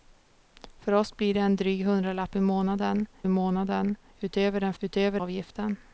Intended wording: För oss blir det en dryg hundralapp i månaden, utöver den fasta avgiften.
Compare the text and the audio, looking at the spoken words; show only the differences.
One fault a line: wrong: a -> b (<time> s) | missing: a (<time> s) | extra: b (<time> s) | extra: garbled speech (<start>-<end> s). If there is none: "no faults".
extra: månaden (3.3 s)
wrong: fasta -> utöver (4.8 s)